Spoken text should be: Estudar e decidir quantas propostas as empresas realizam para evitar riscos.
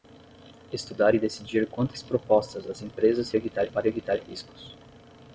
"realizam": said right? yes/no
no